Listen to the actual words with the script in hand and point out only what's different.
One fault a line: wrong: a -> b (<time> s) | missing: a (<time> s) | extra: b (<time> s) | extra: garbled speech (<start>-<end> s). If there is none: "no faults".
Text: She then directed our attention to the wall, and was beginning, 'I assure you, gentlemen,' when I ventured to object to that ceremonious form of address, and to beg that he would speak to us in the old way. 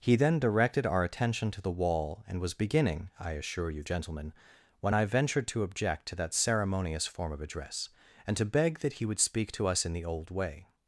wrong: She -> He (0.0 s)